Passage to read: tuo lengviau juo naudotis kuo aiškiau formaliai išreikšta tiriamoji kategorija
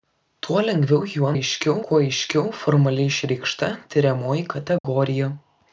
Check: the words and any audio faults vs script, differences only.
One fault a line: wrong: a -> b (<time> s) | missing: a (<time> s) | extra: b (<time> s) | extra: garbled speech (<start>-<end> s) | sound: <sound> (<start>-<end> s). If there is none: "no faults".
wrong: naudotis -> aiškiau (1.3 s)
sound: dropout (4.8-4.8 s)